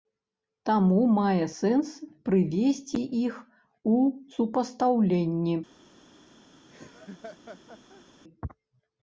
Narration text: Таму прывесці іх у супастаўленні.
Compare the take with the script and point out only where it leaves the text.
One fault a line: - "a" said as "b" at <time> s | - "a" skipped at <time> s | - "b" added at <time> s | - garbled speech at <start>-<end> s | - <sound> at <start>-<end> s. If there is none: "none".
- "мае сэнс" added at 1.2 s
- laugh at 6.7-8.0 s